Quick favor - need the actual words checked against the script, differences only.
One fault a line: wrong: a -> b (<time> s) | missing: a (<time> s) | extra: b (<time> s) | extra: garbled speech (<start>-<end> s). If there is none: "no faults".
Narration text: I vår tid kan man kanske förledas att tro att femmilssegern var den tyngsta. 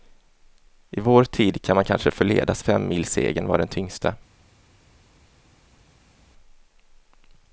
missing: att tro att (2.6 s)